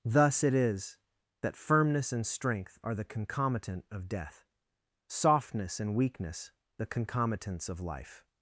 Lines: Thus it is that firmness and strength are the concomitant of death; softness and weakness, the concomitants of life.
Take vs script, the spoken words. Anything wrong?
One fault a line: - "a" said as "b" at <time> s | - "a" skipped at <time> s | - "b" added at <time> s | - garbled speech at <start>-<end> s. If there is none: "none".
none